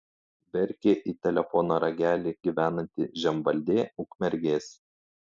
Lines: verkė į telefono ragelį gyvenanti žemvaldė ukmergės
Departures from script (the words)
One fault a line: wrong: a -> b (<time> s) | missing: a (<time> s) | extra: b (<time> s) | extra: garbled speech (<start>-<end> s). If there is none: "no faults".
no faults